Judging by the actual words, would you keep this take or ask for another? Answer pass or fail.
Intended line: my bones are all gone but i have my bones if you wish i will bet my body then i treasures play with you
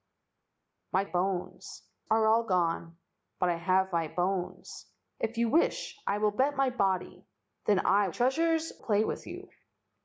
pass